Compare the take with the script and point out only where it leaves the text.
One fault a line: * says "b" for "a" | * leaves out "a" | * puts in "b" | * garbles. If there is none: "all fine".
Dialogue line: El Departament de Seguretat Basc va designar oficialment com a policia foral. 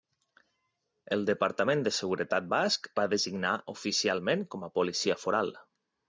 all fine